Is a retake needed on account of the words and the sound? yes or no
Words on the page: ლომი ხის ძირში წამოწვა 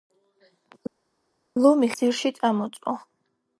yes